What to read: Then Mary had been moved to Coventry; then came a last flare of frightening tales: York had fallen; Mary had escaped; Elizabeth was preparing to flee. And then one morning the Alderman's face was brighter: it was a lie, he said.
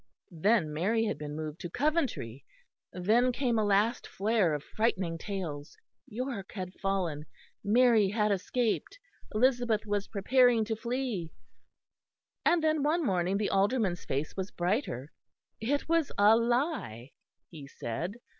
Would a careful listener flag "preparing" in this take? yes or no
no